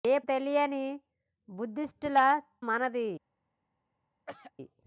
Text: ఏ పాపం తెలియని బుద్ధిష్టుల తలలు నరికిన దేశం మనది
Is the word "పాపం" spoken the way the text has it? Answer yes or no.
no